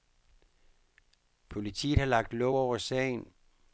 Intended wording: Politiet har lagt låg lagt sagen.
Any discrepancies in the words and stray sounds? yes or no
yes